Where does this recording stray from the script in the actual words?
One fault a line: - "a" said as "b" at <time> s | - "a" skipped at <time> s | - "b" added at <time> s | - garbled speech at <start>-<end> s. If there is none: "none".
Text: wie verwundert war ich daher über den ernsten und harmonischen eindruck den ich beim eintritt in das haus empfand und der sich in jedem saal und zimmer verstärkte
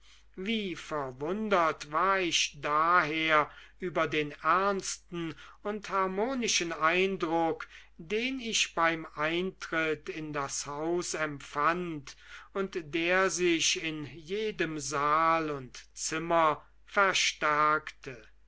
none